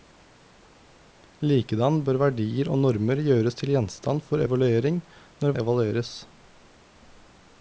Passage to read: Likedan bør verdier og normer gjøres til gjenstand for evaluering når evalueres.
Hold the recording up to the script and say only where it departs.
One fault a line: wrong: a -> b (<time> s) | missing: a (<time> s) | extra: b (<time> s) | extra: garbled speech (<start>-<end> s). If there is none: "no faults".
no faults